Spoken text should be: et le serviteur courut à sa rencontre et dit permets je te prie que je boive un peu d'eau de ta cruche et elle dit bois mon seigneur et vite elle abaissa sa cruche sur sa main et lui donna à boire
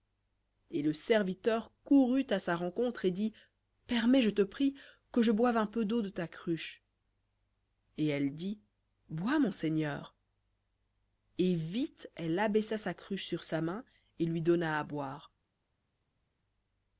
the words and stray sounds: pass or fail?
pass